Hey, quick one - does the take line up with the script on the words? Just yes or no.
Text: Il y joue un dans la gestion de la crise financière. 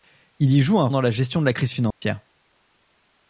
yes